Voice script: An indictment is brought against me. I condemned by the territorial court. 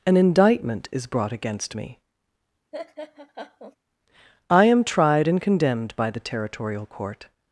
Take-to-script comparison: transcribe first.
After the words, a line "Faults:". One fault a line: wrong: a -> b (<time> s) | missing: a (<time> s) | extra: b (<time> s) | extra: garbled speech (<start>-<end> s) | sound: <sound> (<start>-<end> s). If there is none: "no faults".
An indictment is brought against me. I am tried and condemned by the territorial court.
Faults:
sound: laugh (2.7-3.8 s)
extra: am tried and (4.6 s)